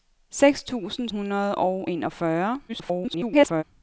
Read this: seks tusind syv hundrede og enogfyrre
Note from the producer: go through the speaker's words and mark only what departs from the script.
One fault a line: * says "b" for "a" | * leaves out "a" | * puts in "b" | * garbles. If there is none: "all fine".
* leaves out "syv"
* garbles